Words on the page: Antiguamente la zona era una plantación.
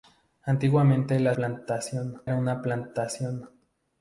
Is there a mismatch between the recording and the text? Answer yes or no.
yes